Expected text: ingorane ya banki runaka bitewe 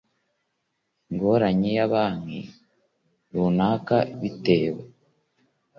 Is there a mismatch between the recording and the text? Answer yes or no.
no